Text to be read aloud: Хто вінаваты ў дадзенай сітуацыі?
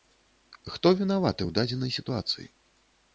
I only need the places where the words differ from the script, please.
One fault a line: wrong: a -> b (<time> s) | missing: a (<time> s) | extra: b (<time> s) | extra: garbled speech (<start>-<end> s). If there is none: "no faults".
no faults